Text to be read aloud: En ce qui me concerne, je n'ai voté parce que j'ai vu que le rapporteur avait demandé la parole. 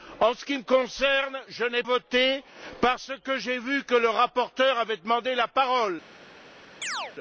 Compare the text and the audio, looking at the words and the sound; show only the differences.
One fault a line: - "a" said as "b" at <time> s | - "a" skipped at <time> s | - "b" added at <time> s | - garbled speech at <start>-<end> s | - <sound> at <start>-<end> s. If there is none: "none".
- chirp at 6.8-7.1 s